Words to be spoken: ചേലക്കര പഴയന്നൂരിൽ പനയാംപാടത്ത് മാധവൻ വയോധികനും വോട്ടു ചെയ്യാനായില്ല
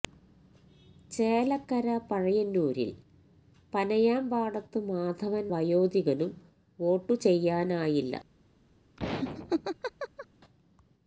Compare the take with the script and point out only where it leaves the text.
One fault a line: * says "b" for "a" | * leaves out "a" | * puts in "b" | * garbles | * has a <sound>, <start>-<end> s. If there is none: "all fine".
* has a laugh, 9.0-10.3 s